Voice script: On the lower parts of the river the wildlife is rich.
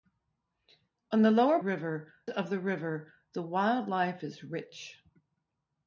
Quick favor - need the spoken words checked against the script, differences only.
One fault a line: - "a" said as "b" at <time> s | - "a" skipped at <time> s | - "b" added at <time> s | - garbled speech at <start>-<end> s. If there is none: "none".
- "parts" said as "river" at 1.6 s